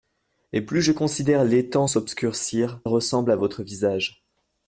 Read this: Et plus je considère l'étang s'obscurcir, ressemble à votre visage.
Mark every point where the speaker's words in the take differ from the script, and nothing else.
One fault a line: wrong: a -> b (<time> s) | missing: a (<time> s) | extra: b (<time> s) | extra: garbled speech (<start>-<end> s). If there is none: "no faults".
no faults